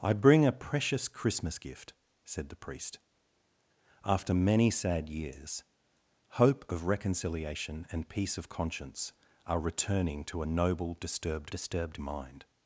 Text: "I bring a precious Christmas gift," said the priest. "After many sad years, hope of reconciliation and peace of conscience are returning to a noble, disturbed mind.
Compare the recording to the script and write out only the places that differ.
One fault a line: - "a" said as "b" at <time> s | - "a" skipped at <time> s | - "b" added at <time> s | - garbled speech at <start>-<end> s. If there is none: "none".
- "disturbed" added at 11.5 s